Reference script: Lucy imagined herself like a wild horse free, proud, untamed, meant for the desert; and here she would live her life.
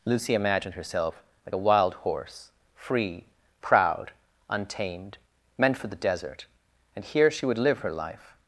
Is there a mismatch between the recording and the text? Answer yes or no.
no